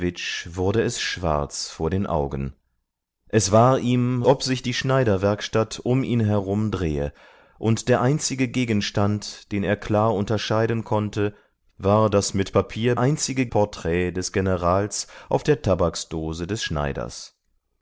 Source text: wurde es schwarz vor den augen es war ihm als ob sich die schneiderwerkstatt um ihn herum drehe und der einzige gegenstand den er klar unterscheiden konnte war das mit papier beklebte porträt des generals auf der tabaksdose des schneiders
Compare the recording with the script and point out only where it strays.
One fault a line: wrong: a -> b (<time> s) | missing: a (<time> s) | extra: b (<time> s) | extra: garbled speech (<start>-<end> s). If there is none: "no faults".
missing: als (4.2 s)
wrong: beklebte -> einzige (13.0 s)